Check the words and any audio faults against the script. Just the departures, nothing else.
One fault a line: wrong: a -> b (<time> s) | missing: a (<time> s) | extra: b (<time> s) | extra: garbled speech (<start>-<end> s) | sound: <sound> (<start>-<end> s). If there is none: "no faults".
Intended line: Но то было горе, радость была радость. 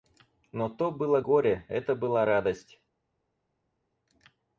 wrong: радость -> это (1.7 s)